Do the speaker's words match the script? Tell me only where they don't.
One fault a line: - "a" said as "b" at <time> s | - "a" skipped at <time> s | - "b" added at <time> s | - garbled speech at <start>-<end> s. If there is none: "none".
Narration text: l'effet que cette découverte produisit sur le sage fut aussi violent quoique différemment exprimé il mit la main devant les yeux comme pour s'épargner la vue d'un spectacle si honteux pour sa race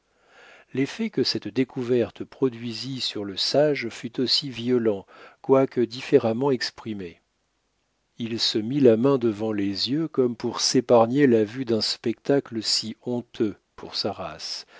- "se" added at 8.4 s